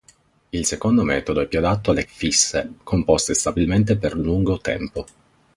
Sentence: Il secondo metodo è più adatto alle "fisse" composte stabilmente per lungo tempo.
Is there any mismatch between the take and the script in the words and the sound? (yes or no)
no